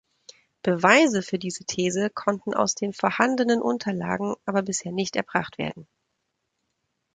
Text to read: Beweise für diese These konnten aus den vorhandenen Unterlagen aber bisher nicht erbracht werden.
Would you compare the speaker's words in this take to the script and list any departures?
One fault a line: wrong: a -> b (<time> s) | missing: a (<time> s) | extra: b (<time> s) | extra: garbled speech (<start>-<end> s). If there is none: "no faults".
no faults